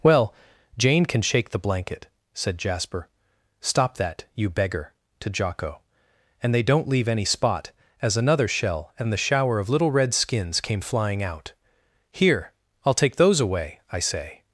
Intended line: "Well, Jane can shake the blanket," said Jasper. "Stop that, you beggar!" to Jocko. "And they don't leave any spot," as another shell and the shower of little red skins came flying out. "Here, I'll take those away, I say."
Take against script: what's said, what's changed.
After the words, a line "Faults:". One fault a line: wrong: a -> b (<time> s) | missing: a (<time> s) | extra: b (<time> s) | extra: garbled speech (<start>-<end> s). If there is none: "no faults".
"Well, Jane can shake the blanket," said Jasper. "Stop that, you beggar!" to Jocko. "And they don't leave any spot," as another shell and the shower of little red skins came flying out. "Here, I'll take those away, I say."
Faults:
no faults